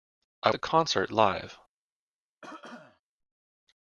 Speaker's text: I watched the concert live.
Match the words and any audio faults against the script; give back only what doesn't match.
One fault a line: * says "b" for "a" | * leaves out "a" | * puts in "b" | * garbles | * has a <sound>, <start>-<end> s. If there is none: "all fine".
* leaves out "watched"
* has a cough, 2.4-3.0 s